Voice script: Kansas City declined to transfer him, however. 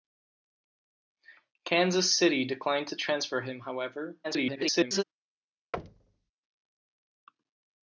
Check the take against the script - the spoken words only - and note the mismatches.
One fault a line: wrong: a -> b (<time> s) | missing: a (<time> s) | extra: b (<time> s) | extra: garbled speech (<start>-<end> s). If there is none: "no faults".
extra: garbled speech (4.2-5.0 s)